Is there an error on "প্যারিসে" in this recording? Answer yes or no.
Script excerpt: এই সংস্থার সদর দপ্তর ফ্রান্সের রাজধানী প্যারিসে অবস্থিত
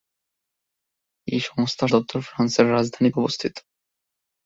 yes